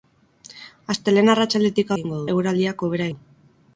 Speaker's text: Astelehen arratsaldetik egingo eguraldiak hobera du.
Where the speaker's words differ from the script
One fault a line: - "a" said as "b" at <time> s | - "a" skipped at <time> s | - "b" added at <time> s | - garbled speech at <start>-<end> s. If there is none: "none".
none